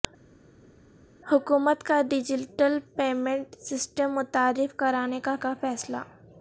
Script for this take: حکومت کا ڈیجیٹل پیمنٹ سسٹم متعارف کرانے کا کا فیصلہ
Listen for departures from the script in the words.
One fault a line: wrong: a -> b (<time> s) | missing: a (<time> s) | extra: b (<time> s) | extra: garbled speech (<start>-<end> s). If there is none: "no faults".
no faults